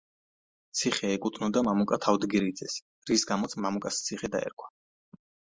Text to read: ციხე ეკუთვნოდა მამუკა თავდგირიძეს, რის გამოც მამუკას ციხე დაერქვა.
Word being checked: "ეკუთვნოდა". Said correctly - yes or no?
yes